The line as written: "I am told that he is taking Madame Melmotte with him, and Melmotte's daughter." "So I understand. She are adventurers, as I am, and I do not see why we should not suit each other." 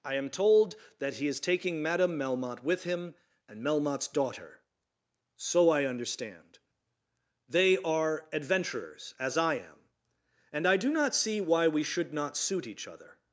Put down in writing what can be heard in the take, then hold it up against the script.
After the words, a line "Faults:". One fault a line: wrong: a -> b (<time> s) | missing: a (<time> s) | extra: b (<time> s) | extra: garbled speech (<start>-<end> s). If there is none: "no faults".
"I am told that he is taking Madame Melmotte with him, and Melmotte's daughter." "So I understand. They are adventurers, as I am, and I do not see why we should not suit each other."
Faults:
wrong: She -> They (7.5 s)